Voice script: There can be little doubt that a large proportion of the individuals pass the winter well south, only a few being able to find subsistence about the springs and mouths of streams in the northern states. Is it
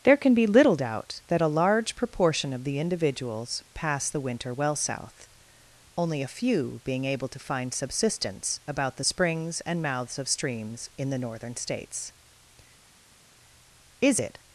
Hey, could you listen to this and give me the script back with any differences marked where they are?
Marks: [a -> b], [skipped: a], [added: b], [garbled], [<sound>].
There can be little doubt that a large proportion of the individuals pass the winter well south, only a few being able to find subsistence about the springs and mouths of streams in the northern states. Is it